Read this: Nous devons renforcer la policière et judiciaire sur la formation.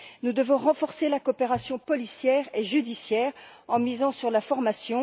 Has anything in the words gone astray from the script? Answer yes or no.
yes